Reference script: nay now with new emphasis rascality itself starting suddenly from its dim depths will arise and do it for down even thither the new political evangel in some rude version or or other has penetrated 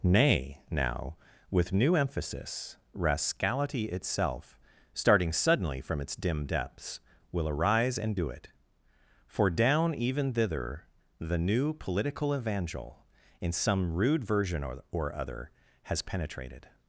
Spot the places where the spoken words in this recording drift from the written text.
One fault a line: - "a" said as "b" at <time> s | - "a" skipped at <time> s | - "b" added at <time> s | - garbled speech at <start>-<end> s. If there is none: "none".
none